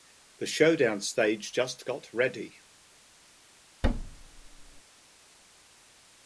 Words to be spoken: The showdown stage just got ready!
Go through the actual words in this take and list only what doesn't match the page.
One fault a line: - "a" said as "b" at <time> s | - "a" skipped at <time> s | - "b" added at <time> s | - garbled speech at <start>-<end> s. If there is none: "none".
none